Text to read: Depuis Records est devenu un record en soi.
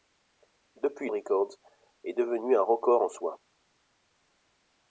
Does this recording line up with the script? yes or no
yes